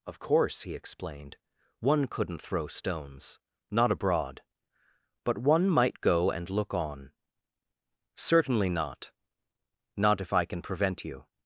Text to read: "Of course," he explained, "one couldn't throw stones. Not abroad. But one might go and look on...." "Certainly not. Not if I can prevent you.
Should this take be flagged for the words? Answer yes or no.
no